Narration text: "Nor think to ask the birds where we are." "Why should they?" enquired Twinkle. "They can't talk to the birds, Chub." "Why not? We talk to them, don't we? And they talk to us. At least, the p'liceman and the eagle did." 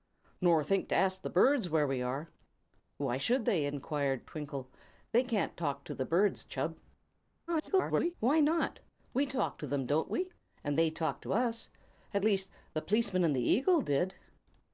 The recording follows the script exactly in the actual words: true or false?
false